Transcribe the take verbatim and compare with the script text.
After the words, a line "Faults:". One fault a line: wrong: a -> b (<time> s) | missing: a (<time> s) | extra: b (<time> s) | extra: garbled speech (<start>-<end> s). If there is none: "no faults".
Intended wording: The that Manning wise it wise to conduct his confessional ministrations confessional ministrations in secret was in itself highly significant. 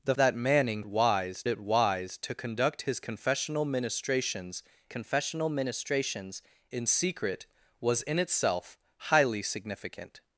The that Manning wise it wise to conduct his confessional ministrations confessional ministrations in secret was in itself highly significant.
Faults:
no faults